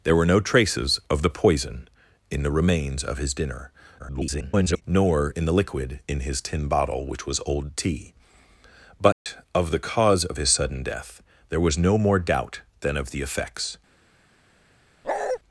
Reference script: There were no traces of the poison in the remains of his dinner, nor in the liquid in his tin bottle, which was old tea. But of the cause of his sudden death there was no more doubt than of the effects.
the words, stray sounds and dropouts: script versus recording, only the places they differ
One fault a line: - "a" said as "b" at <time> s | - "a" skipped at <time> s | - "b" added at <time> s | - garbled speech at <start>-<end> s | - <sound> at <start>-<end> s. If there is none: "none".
- garbled speech at 4.0-4.8 s
- dropout at 9.1-9.3 s
- bark at 15.0-15.4 s